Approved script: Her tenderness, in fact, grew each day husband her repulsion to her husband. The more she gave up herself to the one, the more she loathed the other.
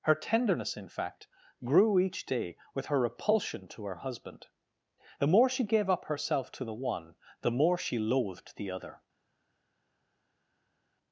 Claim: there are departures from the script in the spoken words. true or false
true